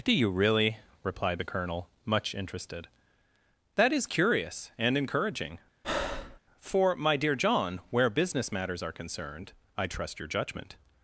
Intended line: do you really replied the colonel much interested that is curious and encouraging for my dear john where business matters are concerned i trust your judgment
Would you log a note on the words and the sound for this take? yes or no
yes